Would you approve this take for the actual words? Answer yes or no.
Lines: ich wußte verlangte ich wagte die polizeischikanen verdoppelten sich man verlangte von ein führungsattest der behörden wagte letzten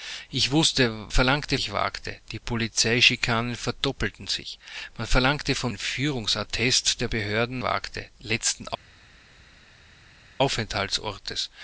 yes